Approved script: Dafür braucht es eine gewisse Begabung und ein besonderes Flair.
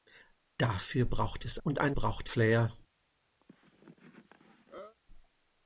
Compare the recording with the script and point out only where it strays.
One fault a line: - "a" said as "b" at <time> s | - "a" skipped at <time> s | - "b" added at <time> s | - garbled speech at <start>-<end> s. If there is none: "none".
- "eine gewisse Begabung" skipped at 1.6 s
- "besonderes" said as "braucht" at 1.9 s